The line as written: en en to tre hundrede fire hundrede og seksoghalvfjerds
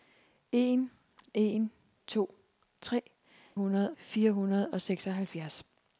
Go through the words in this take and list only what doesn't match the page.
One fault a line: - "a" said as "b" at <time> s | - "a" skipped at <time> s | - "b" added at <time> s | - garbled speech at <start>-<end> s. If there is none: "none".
none